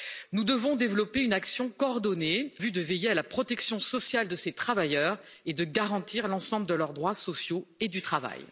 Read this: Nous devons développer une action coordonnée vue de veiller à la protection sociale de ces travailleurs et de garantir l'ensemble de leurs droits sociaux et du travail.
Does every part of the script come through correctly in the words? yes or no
yes